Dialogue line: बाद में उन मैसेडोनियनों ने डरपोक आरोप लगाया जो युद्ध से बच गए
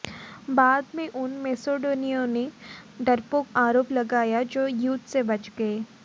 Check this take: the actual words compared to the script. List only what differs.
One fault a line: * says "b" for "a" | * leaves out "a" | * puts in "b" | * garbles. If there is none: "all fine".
all fine